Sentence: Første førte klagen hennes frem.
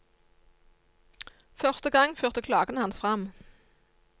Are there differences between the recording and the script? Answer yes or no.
yes